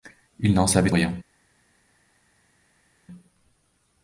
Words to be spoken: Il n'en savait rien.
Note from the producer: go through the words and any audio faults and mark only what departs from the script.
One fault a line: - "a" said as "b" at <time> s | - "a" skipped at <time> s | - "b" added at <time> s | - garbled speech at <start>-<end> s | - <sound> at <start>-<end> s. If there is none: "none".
none